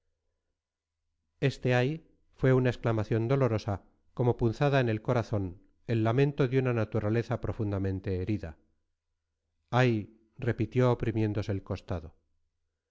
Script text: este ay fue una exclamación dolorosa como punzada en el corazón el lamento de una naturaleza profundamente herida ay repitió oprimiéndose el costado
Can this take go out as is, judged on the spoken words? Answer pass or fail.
pass